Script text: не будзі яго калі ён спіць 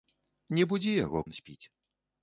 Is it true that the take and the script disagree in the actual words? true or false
true